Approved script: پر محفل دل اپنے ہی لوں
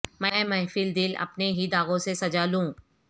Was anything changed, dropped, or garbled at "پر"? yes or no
yes